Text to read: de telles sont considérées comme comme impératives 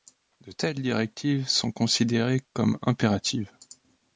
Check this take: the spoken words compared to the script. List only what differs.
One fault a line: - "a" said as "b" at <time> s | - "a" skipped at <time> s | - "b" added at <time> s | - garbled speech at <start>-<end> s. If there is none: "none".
- "directives" added at 0.8 s
- "comme" skipped at 2.8 s